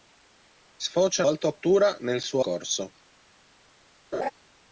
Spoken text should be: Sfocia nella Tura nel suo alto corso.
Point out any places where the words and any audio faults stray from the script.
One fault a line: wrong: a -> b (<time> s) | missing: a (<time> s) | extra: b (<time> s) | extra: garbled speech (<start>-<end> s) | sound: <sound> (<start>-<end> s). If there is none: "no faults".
wrong: nella -> alto (1.3 s)
missing: alto (2.4 s)
sound: laugh (4.1-4.3 s)